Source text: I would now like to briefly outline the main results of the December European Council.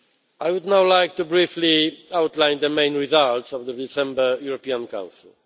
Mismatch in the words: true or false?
false